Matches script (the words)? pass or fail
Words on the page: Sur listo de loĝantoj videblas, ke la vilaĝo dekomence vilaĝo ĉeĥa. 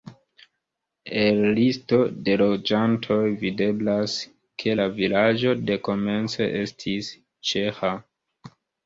fail